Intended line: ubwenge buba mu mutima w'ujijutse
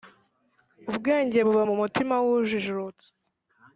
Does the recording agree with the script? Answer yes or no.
yes